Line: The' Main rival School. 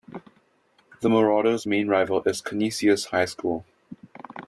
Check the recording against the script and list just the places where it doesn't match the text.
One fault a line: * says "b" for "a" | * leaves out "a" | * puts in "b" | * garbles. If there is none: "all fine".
* puts in "Marauders"
* puts in "is Canisius High"